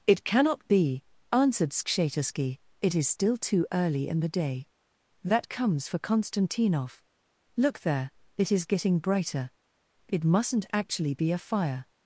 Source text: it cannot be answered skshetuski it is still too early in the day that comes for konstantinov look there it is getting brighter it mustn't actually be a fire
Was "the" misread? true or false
false